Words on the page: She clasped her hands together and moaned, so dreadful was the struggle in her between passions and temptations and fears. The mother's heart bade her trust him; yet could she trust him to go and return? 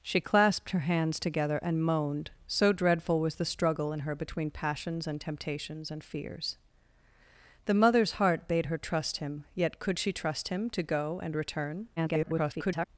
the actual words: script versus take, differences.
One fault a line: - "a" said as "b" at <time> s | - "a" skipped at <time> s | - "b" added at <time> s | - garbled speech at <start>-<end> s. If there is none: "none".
- garbled speech at 12.0-12.9 s